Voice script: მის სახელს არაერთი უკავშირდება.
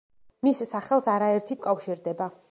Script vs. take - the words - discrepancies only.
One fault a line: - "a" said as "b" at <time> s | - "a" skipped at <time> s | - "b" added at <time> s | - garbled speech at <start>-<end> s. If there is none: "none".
none